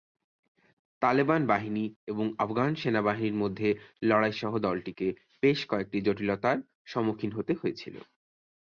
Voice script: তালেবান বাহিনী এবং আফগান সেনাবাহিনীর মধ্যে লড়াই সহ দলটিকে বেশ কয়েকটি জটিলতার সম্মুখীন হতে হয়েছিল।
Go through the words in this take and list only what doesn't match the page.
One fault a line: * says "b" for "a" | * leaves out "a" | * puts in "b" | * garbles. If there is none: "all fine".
all fine